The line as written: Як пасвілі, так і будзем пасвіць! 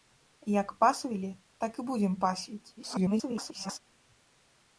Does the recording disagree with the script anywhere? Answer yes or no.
yes